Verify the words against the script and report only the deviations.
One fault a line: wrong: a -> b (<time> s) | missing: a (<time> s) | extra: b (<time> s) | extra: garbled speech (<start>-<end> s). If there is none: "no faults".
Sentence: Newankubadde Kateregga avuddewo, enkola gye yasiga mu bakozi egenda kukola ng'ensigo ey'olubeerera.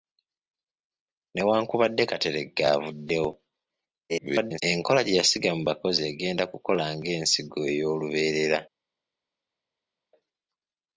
extra: garbled speech (4.1-4.6 s)